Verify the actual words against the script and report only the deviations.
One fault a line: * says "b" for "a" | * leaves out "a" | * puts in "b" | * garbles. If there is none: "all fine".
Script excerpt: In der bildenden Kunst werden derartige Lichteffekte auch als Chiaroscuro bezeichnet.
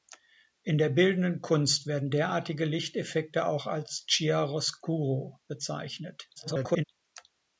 * garbles